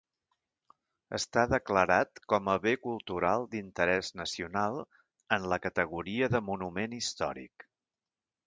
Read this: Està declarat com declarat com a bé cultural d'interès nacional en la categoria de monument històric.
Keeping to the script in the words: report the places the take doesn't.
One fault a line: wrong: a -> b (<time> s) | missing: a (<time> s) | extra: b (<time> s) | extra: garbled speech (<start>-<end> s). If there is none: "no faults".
missing: declarat com (2.5 s)